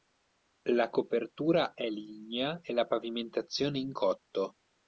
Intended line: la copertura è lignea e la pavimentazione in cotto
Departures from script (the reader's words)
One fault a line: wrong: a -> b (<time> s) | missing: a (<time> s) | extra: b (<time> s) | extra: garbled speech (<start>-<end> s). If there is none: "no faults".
no faults